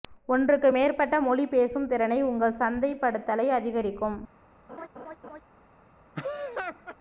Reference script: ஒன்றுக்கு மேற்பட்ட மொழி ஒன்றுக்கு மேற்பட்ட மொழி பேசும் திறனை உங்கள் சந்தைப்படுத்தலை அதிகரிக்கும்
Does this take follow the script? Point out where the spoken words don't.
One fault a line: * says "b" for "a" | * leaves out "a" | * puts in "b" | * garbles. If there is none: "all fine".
* leaves out "ஒன்றுக்கு மேற்பட்ட மொழி"